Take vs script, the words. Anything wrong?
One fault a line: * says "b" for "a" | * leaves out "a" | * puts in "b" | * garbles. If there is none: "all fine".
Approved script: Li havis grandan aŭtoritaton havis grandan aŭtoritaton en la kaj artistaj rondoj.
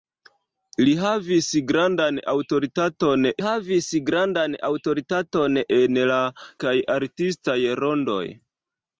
all fine